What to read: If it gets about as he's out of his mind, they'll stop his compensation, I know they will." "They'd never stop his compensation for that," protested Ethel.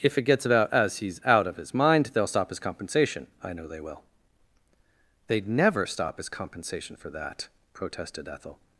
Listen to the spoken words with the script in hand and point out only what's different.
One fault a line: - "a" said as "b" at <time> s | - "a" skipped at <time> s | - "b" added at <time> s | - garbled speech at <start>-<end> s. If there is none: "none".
none